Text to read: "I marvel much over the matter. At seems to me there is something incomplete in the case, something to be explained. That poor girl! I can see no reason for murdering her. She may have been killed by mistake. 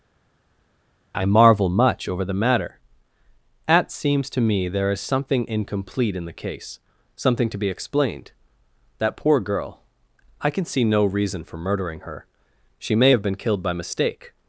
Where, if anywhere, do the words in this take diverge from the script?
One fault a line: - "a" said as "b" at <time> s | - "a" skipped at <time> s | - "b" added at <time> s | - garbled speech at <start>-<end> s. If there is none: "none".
none